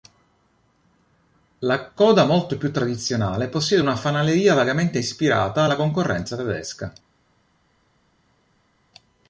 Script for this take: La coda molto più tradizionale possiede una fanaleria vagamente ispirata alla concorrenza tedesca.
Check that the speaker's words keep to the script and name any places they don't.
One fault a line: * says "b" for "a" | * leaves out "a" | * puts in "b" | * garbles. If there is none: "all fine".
all fine